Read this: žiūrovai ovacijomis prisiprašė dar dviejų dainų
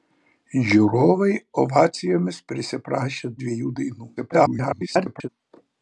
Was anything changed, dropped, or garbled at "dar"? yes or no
yes